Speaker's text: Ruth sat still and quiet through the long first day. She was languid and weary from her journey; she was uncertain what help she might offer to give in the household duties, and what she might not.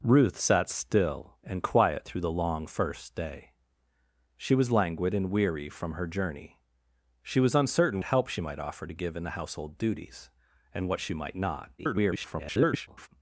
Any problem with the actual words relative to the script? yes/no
yes